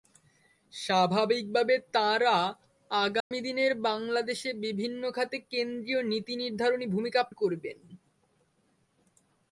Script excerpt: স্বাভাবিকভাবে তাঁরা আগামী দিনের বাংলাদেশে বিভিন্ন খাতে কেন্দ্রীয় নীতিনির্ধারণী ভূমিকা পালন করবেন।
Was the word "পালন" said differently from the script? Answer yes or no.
yes